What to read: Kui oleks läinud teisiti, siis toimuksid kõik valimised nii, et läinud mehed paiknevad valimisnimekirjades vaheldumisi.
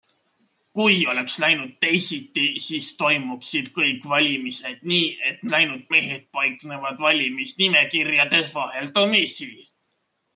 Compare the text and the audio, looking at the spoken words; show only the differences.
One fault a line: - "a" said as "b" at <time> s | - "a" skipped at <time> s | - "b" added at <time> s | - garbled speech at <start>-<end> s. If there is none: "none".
none